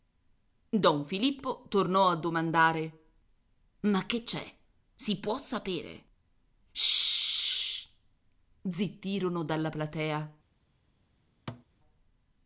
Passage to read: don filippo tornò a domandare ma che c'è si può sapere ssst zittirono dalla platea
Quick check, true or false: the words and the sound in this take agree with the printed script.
false